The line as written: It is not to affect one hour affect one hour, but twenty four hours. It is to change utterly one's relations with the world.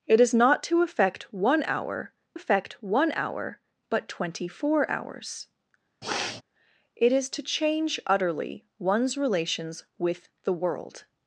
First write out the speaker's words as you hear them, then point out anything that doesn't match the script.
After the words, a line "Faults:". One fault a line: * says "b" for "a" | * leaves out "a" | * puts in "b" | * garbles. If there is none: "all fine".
It is not to affect one hour affect one hour, but twenty four hours. It is to change utterly one's relations with the world.
Faults:
all fine